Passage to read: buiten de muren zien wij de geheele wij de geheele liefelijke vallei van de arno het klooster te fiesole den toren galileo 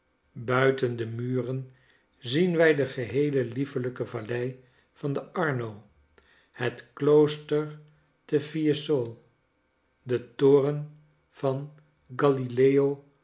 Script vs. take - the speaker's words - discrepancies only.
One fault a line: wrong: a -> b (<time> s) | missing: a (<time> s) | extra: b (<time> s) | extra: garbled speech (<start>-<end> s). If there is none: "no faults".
missing: wij de geheele (3.5 s)
extra: van (11.3 s)